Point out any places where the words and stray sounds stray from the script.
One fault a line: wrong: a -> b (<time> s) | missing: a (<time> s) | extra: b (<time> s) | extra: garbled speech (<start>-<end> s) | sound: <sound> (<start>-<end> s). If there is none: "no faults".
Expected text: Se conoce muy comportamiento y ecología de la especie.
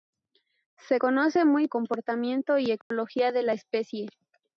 sound: dropout (2.8-2.9 s)